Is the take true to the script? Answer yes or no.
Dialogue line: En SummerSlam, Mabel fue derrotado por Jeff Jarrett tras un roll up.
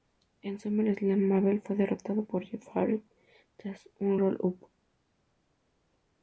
yes